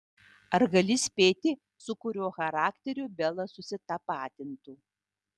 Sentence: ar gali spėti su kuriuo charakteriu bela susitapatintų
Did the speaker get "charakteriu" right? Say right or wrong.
right